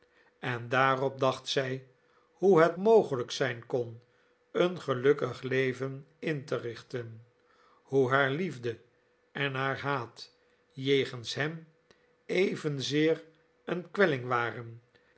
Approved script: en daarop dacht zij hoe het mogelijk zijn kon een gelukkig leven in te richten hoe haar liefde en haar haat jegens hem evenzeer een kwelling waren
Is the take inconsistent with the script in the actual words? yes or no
no